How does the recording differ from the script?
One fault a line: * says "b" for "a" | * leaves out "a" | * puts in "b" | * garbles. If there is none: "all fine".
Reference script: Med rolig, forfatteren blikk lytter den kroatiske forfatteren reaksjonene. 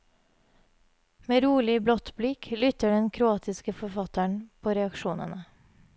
* says "blått" for "forfatteren"
* puts in "på"